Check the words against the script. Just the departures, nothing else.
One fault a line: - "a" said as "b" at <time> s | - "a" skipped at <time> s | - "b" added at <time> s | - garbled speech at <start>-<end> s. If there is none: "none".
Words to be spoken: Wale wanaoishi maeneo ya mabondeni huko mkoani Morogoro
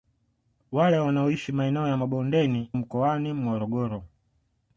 - "huko" skipped at 2.7 s